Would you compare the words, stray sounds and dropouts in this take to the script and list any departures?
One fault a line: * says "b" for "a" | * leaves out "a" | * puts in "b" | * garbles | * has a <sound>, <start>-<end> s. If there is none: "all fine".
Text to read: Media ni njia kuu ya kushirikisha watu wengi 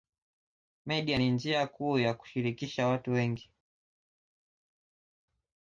all fine